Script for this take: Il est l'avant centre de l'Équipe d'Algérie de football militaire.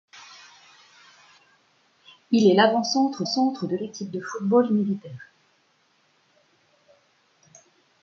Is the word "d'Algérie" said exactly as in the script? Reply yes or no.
no